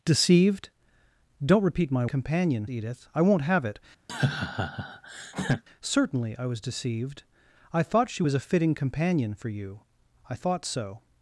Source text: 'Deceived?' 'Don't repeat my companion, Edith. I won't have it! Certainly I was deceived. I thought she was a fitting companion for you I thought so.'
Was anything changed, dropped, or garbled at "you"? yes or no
no